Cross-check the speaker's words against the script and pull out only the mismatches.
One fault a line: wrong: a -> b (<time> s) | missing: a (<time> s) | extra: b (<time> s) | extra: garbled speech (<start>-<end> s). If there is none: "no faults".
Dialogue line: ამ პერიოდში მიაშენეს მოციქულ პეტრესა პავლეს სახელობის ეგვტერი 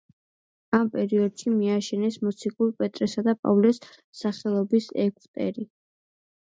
extra: და (3.3 s)